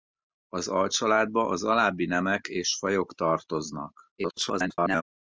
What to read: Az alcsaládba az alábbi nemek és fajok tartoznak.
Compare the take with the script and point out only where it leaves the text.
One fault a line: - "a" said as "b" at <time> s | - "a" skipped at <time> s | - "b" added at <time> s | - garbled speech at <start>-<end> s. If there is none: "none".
- garbled speech at 4.2-5.0 s